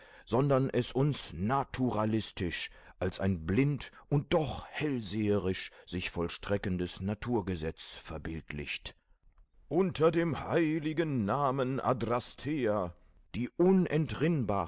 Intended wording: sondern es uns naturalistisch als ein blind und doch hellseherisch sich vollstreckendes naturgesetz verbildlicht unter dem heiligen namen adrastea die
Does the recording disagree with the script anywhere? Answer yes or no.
no